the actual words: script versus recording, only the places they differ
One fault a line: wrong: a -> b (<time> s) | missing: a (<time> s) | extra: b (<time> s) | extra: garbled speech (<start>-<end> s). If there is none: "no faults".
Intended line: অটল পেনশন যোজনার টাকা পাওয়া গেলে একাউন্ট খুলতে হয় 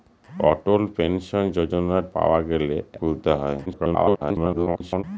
missing: টাকা (2.0 s)
missing: একাউন্ট (2.8 s)
extra: garbled speech (3.7-5.0 s)